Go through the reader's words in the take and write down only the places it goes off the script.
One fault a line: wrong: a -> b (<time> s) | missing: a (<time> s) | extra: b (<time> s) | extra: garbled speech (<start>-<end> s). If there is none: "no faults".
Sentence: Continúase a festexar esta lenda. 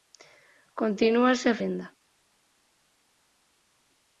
missing: festexar esta (1.6 s)